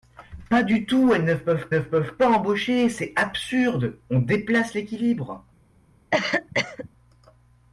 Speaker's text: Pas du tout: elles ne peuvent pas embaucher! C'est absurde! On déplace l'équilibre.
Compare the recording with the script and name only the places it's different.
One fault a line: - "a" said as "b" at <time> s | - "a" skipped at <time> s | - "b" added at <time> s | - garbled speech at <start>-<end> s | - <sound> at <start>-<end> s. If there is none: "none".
- "ne peuvent" added at 1.7 s
- cough at 6.1-6.9 s